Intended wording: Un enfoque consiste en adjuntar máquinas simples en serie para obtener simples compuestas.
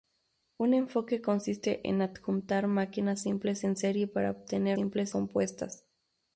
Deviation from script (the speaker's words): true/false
false